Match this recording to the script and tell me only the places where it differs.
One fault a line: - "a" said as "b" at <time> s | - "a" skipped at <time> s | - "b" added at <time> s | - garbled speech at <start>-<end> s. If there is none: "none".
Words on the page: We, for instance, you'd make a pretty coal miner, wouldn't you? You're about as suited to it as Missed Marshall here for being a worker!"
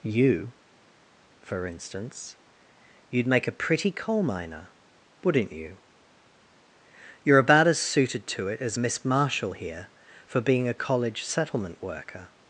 - "We" said as "You" at 0.0 s
- "Missed" said as "Miss" at 8.8 s
- "college settlement" added at 10.7 s